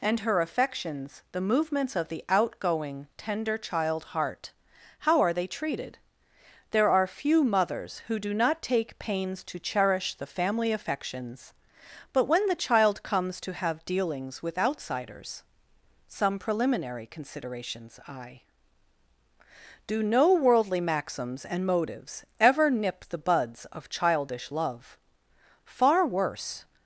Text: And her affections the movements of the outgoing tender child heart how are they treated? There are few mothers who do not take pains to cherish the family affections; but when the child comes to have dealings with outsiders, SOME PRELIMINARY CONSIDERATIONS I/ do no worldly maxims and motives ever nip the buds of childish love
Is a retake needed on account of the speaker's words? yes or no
yes